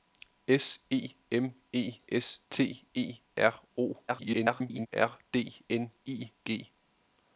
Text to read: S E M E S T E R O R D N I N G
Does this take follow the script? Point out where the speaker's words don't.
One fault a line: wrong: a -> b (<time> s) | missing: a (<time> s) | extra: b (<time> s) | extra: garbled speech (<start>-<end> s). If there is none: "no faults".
extra: garbled speech (4.1-4.9 s)
missing: N (6.3 s)